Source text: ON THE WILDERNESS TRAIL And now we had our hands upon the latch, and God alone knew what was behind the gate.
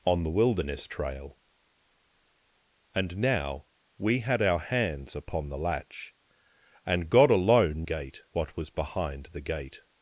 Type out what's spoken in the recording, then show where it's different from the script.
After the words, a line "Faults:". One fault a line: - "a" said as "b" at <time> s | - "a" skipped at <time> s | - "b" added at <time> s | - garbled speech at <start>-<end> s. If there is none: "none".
ON THE WILDERNESS TRAIL And now we had our hands upon the latch, and God alone gate what was behind the gate.
Faults:
- "knew" said as "gate" at 7.8 s